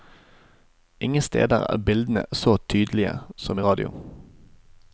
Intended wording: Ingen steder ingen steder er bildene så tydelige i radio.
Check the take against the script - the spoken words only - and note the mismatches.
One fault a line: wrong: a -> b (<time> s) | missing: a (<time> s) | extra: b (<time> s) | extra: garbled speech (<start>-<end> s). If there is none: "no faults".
missing: ingen steder (1.6 s)
extra: som (3.4 s)